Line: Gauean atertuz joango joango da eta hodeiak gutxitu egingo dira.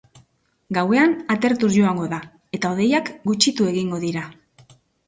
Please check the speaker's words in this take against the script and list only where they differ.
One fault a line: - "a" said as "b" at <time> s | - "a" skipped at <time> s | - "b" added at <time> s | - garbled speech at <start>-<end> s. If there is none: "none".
- "joango" skipped at 2.1 s